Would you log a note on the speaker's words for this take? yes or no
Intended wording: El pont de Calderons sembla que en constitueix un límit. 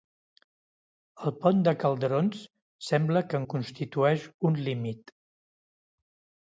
no